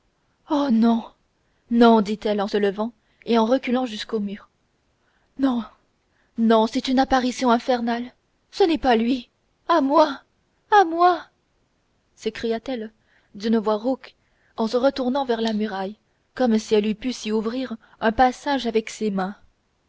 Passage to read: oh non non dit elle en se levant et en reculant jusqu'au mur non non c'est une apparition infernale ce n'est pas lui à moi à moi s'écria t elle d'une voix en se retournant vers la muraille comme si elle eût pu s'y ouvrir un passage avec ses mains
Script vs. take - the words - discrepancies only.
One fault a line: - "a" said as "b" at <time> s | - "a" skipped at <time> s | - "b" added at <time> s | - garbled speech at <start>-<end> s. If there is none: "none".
- "rauque" added at 13.8 s